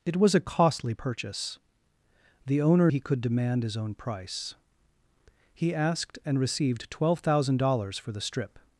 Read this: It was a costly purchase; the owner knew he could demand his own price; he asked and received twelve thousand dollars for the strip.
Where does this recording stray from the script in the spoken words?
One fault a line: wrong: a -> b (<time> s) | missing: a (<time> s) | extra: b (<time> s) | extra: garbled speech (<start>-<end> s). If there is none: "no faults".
missing: knew (2.9 s)